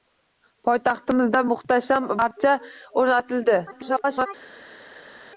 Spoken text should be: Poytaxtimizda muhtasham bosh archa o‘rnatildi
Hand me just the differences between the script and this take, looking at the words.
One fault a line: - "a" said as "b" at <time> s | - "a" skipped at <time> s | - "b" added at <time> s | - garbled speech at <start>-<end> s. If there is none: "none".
- "bosh" skipped at 2.1 s
- garbled speech at 3.7-4.3 s